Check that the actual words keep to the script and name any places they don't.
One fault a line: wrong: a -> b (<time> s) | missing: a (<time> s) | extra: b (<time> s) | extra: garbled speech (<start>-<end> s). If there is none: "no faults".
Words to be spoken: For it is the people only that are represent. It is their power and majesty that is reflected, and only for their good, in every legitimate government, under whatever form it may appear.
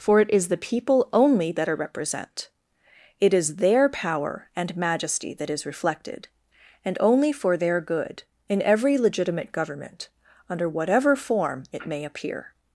no faults